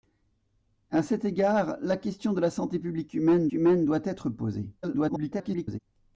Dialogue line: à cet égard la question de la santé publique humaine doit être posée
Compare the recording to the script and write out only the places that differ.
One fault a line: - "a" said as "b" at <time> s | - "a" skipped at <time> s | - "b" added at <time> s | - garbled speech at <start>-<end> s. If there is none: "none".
- "humaine" added at 3.5 s
- garbled speech at 4.8-5.8 s